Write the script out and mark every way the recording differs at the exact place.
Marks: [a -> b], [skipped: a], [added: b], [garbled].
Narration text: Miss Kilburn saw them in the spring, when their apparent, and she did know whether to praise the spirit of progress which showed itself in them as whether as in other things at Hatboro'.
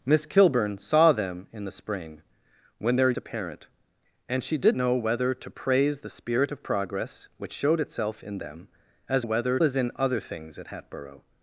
Miss Kilburn saw them in the spring, when their apparent, and she did know whether to praise the spirit of progress which showed itself in them as whether as in other things at Hatboro'.